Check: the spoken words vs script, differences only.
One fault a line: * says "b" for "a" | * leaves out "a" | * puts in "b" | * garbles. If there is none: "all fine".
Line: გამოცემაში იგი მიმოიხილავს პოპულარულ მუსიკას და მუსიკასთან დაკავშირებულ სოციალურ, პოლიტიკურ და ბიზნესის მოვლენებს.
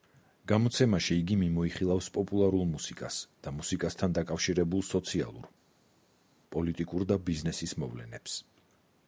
all fine